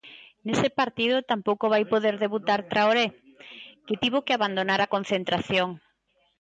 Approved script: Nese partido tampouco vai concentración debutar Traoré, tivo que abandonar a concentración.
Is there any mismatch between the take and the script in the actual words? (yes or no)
yes